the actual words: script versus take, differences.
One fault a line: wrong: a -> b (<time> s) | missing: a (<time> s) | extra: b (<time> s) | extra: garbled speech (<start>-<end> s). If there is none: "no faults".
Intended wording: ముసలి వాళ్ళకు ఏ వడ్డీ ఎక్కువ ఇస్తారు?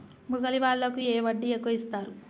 no faults